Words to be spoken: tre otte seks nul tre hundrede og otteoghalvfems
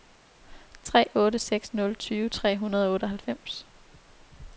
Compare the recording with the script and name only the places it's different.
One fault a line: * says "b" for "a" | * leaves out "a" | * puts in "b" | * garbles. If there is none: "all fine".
* puts in "tyve"